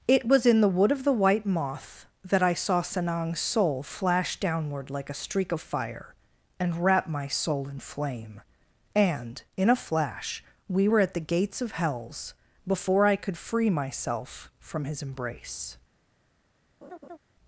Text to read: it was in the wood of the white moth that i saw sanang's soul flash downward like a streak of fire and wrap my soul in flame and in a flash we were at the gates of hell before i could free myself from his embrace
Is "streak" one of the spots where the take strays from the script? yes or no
no